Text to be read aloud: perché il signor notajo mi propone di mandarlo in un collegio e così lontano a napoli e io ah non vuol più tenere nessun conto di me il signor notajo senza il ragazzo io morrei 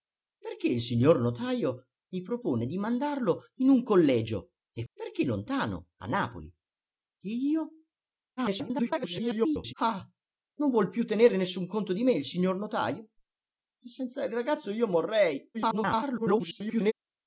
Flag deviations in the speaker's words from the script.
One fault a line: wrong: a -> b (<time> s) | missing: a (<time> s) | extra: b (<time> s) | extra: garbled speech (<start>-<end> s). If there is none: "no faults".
wrong: così -> perché (4.9 s)
extra: garbled speech (8.4-9.7 s)
extra: garbled speech (15.5-16.9 s)